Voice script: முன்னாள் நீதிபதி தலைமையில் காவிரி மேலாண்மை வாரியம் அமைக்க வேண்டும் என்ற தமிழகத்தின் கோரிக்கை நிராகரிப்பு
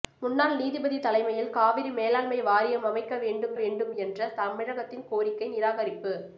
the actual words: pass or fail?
fail